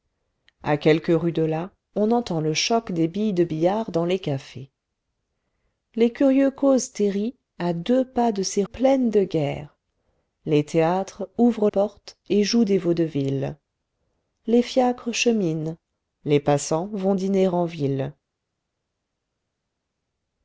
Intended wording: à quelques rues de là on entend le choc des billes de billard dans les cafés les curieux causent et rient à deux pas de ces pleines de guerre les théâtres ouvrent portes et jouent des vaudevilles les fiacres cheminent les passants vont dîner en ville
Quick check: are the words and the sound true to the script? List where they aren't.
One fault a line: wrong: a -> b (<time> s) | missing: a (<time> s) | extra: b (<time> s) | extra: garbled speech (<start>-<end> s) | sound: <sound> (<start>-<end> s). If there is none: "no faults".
no faults